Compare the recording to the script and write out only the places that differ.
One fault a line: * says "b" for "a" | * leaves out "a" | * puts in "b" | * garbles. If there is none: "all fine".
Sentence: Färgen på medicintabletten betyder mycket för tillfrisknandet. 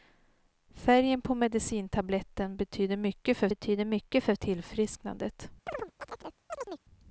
* puts in "betyder mycket för"